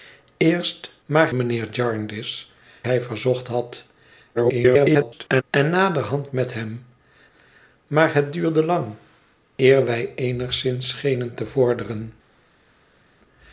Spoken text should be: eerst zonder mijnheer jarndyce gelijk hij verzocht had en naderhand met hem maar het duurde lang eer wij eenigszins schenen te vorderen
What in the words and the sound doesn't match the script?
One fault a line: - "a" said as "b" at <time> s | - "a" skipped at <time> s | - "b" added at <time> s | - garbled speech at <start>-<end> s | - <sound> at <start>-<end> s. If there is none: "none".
- "zonder" said as "maar" at 1.1 s
- "gelijk" skipped at 2.5 s
- garbled speech at 4.3-5.4 s